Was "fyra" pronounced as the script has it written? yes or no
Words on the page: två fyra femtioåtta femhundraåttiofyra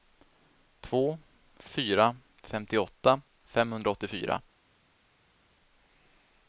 yes